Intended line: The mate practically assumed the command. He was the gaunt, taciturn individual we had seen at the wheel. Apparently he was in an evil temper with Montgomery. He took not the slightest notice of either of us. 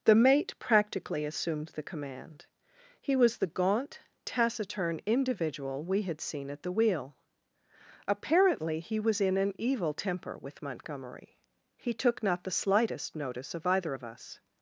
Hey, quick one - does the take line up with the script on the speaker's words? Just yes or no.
yes